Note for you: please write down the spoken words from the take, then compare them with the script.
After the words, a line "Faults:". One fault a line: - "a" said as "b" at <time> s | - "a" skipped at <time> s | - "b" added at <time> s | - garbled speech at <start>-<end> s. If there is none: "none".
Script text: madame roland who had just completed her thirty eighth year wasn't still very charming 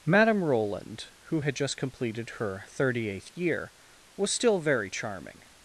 madame roland who had just completed her thirty eighth year was still very charming
Faults:
- "wasn't" said as "was" at 4.2 s